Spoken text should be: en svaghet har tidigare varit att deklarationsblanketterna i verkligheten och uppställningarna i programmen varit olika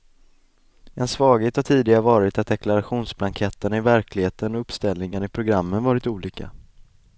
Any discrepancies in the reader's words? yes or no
no